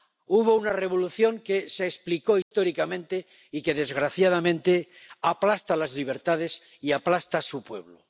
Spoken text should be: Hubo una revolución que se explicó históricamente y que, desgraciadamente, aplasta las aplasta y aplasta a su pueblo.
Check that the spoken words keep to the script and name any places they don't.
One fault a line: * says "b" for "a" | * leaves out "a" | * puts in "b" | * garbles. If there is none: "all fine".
* says "libertades" for "aplasta"